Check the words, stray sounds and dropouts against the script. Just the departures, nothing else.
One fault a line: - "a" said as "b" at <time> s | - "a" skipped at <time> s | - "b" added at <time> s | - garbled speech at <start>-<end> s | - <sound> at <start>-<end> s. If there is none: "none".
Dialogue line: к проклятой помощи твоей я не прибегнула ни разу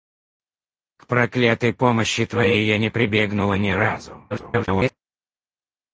- garbled speech at 4.3-4.9 s